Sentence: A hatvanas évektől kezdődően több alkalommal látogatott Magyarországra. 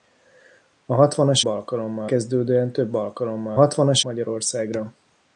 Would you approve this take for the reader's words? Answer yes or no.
no